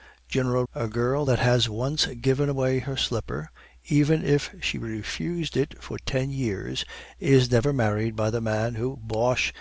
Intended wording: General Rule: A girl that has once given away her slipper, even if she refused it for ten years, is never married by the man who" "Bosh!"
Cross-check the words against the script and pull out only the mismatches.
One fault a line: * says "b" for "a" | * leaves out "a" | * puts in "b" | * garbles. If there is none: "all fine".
* leaves out "Rule"